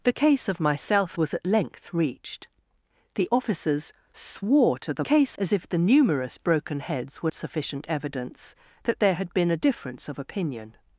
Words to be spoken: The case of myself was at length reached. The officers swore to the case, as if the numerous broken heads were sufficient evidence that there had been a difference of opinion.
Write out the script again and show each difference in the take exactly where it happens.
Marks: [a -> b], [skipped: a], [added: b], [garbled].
The case of myself was at length reached. The officers swore to the case, as if the numerous broken heads were sufficient evidence that there had been a difference of opinion.